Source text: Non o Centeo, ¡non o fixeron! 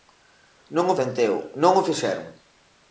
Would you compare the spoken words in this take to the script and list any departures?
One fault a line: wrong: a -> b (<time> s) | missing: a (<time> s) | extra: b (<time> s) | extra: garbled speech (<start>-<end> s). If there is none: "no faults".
no faults